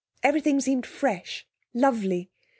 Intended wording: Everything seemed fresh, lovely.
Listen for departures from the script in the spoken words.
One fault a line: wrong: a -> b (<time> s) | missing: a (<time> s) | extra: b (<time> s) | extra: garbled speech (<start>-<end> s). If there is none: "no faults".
no faults